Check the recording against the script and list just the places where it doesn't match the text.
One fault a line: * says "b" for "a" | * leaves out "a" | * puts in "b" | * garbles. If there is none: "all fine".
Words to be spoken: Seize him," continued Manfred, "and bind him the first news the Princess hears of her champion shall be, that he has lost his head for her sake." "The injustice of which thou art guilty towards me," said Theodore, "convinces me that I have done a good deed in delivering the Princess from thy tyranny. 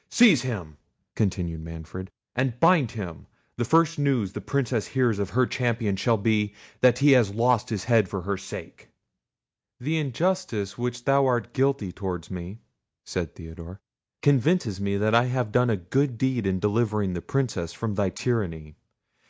all fine